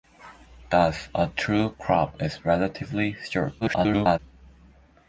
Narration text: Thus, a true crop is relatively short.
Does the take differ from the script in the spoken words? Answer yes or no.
yes